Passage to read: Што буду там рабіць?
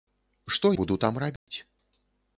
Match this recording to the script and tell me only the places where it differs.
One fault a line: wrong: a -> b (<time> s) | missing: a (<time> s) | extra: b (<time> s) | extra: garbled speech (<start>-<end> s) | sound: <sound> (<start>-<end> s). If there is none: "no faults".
sound: dropout (1.4-1.5 s)